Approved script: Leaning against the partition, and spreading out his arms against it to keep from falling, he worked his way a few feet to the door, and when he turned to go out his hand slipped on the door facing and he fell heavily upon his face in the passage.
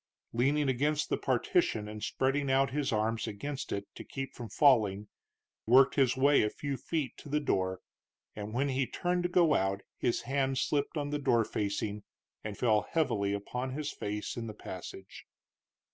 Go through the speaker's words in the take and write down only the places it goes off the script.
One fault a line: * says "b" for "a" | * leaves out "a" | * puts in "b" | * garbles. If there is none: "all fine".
* leaves out "he"
* leaves out "he"